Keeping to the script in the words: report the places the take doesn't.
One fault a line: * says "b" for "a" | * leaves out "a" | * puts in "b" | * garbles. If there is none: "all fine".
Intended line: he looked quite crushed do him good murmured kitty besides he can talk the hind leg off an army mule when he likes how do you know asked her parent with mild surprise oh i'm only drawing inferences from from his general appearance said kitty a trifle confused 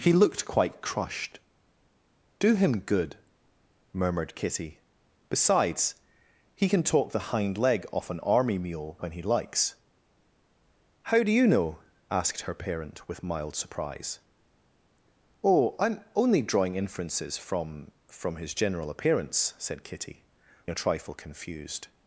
all fine